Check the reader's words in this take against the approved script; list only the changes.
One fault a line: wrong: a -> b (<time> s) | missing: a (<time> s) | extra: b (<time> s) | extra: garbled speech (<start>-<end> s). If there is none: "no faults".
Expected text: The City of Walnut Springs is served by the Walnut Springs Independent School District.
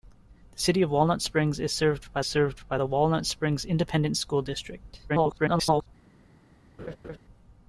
extra: served by (2.2 s)
extra: garbled speech (5.1-5.9 s)